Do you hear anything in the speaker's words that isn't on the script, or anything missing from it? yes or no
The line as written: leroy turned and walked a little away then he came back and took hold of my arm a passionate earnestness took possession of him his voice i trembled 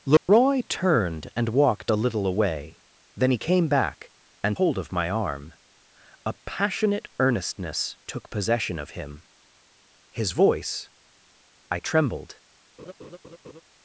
yes